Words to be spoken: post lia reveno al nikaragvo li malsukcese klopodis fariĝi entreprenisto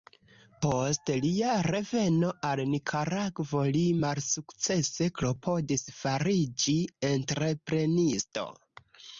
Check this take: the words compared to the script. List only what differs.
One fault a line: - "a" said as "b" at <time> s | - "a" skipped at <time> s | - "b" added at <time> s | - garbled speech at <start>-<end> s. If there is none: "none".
none